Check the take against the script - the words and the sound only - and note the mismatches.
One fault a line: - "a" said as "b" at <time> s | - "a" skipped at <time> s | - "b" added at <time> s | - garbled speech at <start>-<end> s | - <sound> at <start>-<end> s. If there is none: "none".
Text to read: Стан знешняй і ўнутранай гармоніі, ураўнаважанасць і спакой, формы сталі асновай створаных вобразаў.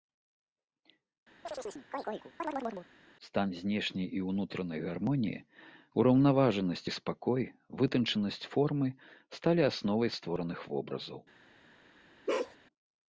- chirp at 1.4-2.9 s
- "вытанчанасць" added at 7.8 s
- bark at 12.3-12.6 s